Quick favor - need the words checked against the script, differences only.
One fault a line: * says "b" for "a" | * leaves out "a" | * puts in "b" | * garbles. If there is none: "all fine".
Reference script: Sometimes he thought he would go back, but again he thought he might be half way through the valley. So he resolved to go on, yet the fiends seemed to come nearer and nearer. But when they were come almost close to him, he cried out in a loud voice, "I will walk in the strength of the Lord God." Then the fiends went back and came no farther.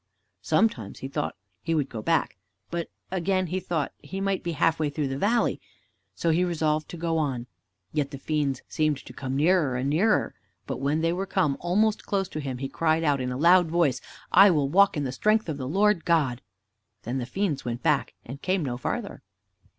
all fine